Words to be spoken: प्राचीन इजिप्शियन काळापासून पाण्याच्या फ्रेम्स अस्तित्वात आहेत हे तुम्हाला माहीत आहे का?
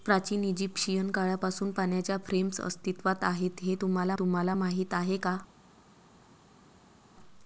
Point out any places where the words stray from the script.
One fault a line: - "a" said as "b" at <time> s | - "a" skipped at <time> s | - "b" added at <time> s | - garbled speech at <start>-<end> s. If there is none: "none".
- "तुम्हाला" added at 4.1 s